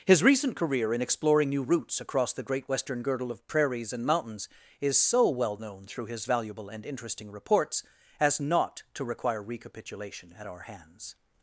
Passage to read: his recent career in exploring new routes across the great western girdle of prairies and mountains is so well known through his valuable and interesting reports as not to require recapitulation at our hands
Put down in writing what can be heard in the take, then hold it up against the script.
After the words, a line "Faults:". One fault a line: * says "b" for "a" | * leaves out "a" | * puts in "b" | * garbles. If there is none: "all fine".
his recent career in exploring new routes across the great western girdle of prairies and mountains is so well known through his valuable and interesting reports as not to require recapitulation at our hands
Faults:
all fine